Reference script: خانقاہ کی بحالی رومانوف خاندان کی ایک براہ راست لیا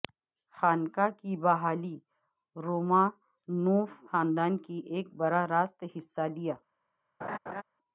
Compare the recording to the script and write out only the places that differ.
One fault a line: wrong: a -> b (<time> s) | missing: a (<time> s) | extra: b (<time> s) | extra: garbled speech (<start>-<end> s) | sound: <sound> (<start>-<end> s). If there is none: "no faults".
extra: حصہ (6.0 s)
sound: laugh (7.2-7.6 s)